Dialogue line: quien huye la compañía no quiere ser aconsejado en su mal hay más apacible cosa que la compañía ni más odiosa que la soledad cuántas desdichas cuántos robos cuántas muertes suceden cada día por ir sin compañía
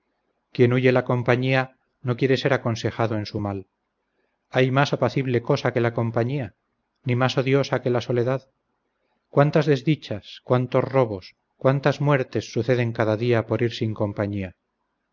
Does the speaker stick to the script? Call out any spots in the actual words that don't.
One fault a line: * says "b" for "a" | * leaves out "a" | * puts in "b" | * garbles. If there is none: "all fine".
all fine